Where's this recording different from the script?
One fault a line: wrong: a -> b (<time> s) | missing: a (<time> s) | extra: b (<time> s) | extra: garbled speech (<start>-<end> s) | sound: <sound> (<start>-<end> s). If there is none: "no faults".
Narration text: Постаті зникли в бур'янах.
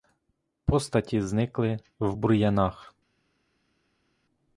no faults